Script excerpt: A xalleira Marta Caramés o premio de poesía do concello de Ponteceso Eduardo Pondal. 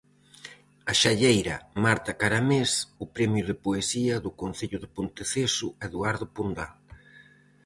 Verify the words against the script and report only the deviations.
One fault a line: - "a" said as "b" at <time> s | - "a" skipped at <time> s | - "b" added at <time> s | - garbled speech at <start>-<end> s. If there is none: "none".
none